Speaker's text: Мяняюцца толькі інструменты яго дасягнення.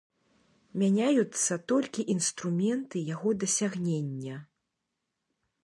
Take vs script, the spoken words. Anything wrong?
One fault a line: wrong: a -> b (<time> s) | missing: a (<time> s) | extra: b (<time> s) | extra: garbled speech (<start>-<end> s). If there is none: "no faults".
no faults